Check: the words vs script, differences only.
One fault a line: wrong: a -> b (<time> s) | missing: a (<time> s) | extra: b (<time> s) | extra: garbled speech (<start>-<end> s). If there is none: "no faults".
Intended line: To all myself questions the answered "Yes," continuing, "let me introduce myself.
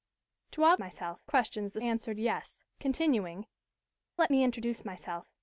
no faults